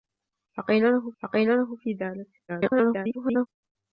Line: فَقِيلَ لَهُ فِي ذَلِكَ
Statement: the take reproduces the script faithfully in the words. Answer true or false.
false